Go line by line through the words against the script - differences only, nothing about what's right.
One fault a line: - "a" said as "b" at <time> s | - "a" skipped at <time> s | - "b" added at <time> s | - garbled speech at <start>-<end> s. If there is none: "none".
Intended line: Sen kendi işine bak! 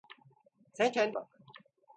- "işine" skipped at 1.2 s